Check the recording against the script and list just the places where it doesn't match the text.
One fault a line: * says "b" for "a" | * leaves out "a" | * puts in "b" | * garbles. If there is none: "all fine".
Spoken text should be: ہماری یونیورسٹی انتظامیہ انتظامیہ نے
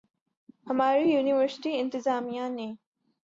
* leaves out "انتظامیہ"